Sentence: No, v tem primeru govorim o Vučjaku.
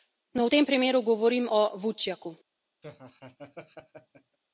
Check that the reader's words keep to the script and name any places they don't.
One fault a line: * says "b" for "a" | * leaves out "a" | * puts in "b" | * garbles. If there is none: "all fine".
all fine